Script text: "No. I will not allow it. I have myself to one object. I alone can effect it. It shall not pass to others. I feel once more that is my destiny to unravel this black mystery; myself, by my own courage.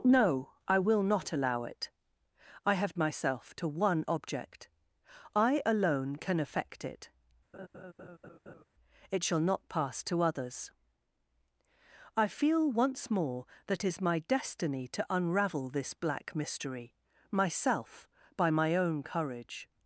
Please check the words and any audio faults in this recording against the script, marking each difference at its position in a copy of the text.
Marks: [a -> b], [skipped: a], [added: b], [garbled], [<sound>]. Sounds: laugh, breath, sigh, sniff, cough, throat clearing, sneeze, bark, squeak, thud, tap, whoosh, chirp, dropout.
"No. I will not allow it. I have myself to one object. I alone can effect it. [laugh] It shall not pass to others. I feel once more that is my destiny to unravel this black mystery; myself, by my own courage.